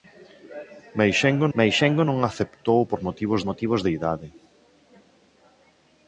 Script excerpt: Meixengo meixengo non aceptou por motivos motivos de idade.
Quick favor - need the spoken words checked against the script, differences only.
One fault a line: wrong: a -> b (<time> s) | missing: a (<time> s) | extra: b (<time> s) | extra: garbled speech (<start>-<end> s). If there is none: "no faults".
no faults